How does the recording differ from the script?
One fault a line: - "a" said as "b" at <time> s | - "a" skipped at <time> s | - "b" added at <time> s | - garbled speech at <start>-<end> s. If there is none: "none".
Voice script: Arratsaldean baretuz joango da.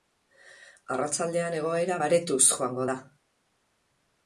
- "egoera" added at 1.6 s